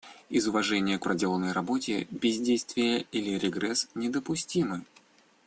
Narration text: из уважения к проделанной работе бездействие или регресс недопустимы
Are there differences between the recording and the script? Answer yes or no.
no